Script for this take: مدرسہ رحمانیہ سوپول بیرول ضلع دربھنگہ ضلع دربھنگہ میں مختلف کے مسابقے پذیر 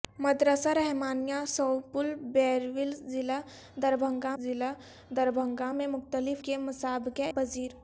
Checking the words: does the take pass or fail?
pass